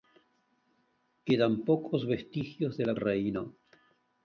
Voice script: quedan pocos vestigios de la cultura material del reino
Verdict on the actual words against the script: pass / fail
fail